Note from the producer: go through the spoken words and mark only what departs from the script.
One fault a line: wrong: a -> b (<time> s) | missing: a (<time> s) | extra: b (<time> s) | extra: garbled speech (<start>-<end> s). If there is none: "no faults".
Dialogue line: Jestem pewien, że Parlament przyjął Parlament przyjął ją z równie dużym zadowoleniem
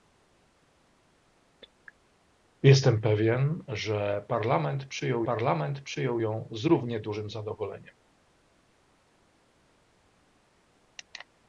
no faults